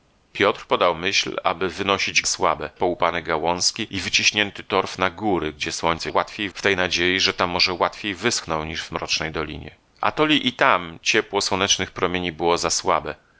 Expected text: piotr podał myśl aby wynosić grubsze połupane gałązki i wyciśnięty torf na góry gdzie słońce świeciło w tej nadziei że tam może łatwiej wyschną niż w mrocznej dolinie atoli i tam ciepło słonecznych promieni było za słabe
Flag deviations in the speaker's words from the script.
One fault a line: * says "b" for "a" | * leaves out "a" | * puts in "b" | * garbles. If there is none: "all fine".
* says "słabe" for "grubsze"
* says "łatwiej" for "świeciło"